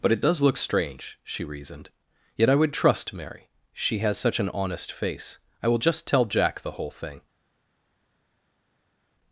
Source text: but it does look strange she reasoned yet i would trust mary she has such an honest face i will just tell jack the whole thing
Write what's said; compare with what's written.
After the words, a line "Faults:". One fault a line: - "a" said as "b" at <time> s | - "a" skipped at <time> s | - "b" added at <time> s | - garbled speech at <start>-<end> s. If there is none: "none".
but it does look strange she reasoned yet i would trust mary she has such an honest face i will just tell jack the whole thing
Faults:
none